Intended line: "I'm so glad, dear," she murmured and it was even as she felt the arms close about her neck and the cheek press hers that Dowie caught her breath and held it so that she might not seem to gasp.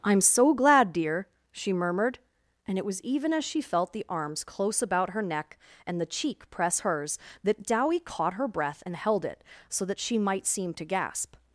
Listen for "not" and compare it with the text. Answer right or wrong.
wrong